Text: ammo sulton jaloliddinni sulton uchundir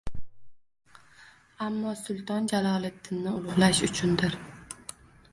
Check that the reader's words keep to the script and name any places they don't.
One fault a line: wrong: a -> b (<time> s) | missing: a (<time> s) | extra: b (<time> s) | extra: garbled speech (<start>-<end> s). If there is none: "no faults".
wrong: sulton -> ulug‘lash (3.4 s)